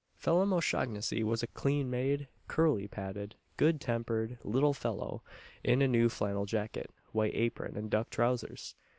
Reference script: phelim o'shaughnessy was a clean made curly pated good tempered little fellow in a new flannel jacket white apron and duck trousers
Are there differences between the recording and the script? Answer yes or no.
no